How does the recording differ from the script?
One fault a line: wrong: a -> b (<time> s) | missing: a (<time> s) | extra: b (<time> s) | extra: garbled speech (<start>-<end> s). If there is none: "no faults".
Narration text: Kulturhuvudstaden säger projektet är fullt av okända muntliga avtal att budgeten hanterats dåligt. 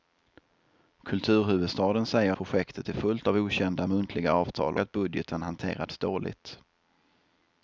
no faults